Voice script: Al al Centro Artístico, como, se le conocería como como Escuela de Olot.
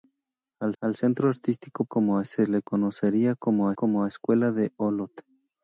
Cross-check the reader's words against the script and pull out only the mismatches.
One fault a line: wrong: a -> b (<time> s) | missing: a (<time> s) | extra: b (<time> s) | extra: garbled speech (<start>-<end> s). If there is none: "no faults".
no faults